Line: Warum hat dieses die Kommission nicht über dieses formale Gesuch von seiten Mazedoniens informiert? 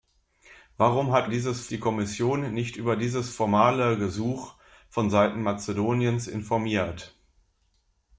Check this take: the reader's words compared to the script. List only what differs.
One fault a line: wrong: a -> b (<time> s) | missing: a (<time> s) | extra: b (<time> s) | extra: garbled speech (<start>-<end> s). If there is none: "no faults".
no faults